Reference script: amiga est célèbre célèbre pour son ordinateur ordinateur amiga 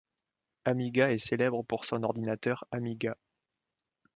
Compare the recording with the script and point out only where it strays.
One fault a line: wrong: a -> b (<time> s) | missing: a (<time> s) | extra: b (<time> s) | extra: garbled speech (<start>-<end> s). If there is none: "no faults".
missing: célèbre (1.6 s)
missing: ordinateur (2.6 s)